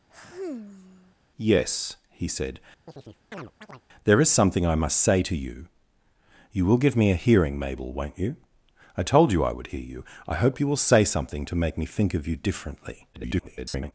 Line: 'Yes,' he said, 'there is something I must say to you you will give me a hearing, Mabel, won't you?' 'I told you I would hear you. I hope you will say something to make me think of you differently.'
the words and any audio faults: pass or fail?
fail